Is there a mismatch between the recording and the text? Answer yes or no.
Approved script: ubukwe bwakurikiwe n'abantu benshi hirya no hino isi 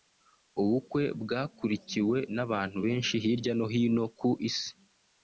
yes